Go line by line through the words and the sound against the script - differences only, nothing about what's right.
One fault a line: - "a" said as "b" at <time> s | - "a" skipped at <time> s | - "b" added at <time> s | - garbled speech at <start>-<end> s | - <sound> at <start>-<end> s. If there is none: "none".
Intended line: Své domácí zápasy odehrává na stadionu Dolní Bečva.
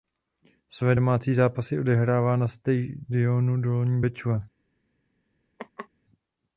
- laugh at 5.6-5.9 s